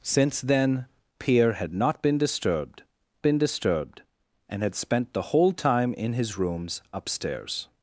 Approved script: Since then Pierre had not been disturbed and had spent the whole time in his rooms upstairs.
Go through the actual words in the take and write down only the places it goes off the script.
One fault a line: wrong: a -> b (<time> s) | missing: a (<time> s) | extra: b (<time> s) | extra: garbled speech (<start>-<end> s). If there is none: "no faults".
extra: been disturbed (3.2 s)